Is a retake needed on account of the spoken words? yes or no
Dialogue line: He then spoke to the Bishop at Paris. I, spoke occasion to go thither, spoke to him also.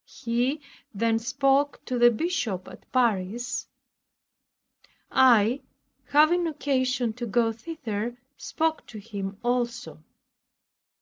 yes